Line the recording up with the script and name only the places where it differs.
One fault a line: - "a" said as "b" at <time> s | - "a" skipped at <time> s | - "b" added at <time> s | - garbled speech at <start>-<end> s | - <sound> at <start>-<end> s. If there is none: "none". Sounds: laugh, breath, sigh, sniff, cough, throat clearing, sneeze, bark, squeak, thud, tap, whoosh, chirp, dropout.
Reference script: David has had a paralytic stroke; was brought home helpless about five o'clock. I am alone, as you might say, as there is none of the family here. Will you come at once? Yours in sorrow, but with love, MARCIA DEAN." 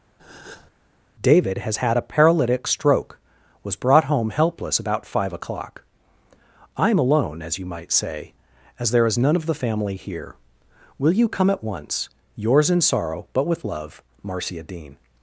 - breath at 0.2-0.7 s